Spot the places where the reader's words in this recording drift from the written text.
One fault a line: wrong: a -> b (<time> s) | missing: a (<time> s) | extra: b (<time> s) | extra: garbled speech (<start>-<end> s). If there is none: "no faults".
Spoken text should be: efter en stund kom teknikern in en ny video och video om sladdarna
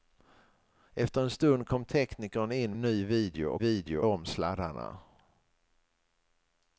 no faults